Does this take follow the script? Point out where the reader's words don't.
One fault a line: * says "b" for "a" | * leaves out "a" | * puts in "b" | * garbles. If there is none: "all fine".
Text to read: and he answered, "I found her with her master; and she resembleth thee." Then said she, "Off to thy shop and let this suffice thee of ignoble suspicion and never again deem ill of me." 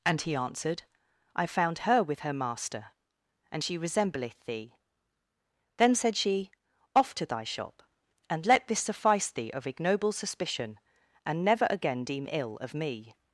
all fine